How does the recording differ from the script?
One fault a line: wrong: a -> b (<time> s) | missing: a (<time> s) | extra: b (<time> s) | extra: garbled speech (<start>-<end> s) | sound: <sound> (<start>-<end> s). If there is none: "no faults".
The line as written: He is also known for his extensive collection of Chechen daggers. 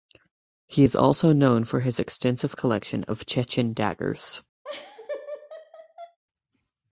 sound: laugh (4.6-6.2 s)